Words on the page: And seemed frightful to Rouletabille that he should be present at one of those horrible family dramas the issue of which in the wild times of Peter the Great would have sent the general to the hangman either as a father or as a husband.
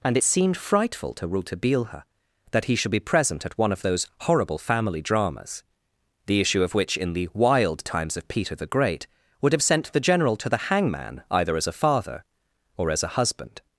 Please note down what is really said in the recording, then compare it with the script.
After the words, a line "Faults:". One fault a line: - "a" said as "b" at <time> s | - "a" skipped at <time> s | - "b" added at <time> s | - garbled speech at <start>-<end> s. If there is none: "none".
And seemed frightful to Rouletabille that he should be present at one of those horrible family dramas the issue of which in the wild times of Peter the Great would have sent the general to the hangman either as a father or as a husband.
Faults:
none